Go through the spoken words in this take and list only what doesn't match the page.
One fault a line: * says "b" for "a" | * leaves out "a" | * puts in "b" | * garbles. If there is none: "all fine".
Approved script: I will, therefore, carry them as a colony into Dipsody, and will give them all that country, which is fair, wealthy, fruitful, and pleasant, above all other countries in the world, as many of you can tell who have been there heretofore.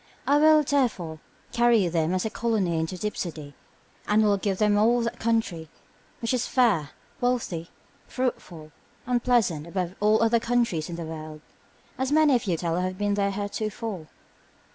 * leaves out "can"